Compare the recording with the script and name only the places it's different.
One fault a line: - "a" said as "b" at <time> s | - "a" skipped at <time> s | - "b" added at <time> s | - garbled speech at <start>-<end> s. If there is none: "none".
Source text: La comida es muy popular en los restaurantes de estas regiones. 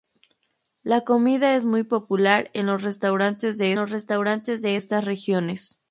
- "los restaurantes de" added at 3.7 s